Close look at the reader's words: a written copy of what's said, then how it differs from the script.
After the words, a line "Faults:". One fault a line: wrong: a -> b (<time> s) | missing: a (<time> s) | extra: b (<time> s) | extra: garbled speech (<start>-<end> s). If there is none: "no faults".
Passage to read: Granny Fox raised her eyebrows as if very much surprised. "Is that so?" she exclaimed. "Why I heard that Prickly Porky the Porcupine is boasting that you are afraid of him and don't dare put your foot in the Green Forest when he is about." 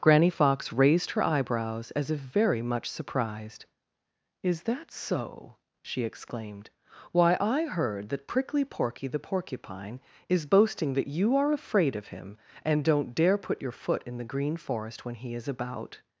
Granny Fox raised her eyebrows as if very much surprised. "Is that so?" she exclaimed. "Why I heard that Prickly Porky the Porcupine is boasting that you are afraid of him and don't dare put your foot in the Green Forest when he is about."
Faults:
no faults